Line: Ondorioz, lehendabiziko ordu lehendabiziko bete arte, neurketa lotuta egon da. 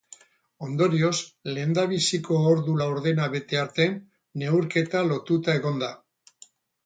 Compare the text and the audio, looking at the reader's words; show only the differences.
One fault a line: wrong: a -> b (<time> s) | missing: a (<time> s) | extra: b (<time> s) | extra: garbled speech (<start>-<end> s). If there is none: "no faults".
wrong: lehendabiziko -> laurdena (2.8 s)